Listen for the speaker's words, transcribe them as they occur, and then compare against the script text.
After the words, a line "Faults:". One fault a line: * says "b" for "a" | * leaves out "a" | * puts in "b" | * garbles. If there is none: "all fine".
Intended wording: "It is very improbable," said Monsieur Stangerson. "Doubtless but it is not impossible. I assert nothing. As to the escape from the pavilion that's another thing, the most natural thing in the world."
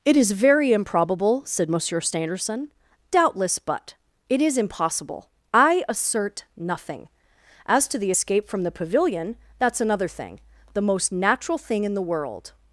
"It is very improbable," said Monsieur Stangerson. "Doubtless but it is impossible. I assert nothing. As to the escape from the pavilion that's another thing, the most natural thing in the world."
Faults:
* leaves out "not"